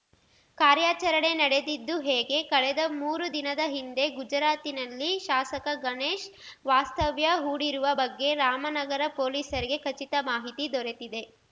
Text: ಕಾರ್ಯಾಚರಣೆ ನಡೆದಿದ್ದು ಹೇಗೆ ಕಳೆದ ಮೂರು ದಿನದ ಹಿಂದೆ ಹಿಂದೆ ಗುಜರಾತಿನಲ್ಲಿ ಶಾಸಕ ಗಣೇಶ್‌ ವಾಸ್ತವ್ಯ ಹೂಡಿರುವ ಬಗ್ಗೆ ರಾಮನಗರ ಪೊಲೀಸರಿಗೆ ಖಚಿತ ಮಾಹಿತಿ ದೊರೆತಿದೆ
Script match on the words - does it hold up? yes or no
no